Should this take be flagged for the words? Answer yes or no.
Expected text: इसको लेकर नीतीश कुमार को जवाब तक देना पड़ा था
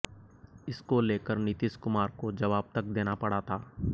no